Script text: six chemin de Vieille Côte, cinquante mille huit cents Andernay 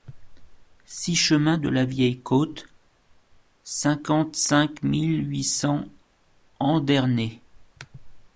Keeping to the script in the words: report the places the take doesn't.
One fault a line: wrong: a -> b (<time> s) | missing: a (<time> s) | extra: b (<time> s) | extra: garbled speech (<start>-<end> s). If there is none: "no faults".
extra: la (1.7 s)
extra: cinq (4.3 s)